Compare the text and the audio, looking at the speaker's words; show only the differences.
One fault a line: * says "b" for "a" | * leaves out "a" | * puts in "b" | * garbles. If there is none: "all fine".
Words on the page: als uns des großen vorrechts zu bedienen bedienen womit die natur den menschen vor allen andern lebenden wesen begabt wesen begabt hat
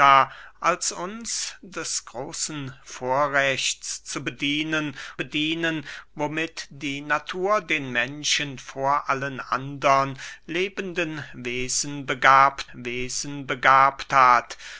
all fine